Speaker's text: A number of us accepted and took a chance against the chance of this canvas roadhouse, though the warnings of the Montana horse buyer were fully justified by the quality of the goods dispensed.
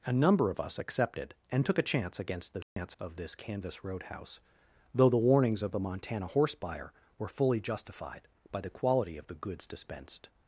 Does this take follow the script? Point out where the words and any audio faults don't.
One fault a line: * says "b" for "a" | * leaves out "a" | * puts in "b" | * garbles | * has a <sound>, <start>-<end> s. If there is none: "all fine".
* has a dropout, 2.6-2.8 s